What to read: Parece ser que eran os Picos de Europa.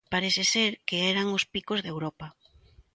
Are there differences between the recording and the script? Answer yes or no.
no